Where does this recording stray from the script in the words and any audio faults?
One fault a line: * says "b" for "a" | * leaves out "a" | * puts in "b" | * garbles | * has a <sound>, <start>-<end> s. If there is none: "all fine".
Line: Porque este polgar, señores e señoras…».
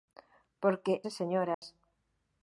* leaves out "este polgar señores"
* has a dropout, 1.5-1.6 s